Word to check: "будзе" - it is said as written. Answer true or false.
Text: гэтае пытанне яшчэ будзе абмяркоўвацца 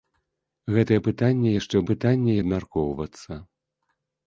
false